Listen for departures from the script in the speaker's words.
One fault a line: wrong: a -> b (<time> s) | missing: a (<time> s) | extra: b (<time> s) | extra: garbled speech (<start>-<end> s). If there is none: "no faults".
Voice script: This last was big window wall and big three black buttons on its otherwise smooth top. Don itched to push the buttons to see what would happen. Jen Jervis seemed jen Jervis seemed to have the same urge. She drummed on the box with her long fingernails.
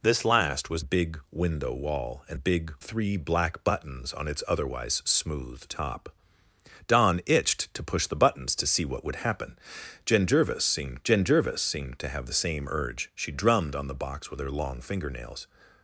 no faults